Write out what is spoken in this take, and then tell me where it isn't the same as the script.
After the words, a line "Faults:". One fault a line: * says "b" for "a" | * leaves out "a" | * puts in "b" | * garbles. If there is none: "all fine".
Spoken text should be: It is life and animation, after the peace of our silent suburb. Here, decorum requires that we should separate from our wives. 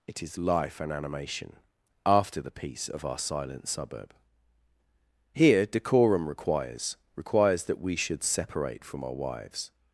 It is life and animation, after the peace of our silent suburb. Here, decorum requires requires that we should separate from our wives.
Faults:
* puts in "requires"